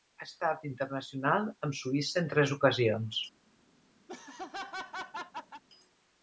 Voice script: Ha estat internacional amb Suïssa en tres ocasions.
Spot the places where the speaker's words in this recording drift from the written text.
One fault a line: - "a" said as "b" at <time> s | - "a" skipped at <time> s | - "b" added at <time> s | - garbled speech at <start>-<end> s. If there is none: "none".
none